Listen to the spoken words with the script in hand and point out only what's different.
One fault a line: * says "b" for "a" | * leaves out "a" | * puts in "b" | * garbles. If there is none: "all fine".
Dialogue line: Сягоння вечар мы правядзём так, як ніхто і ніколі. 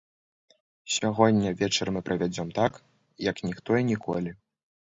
all fine